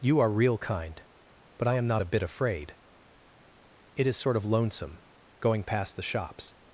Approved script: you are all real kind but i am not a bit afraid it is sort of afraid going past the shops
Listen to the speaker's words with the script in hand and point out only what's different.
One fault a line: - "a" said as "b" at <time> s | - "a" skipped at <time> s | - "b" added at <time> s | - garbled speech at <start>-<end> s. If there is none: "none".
- "all" skipped at 0.3 s
- "afraid" said as "lonesome" at 4.5 s